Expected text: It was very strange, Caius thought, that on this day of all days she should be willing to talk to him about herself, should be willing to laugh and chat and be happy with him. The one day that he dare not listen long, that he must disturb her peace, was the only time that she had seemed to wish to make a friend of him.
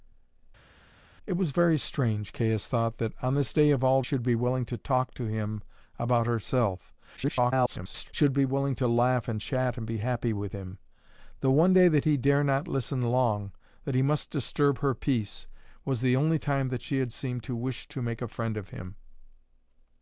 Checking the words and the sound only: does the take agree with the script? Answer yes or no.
no